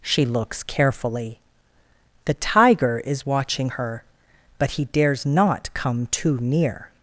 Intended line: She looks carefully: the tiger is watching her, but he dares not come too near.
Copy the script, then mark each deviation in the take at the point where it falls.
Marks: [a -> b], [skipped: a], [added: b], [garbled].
She looks carefully: the tiger is watching her, but he dares not come too near.